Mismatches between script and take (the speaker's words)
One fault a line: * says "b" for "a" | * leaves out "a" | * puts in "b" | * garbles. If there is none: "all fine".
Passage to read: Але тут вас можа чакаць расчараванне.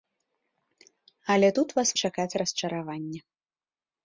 * leaves out "можа"